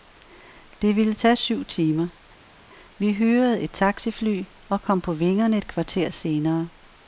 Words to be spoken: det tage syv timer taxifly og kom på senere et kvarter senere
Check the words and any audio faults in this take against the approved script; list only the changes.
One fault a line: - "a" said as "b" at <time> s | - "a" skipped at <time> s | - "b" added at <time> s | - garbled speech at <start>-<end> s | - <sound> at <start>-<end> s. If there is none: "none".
- "ville" added at 0.9 s
- "vi hyrede et" added at 3.0 s
- "senere" said as "vingerne" at 5.1 s